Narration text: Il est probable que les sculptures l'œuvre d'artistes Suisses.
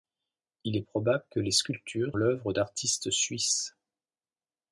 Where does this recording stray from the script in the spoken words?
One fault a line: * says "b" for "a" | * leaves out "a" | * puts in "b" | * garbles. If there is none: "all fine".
all fine